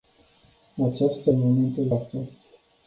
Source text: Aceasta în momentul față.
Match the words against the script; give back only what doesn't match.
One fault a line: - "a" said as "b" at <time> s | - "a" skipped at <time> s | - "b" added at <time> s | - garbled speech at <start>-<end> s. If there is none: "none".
none